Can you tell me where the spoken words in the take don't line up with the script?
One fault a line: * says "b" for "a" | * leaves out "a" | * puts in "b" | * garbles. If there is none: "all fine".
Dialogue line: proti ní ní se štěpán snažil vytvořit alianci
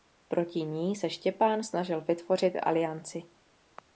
* leaves out "ní"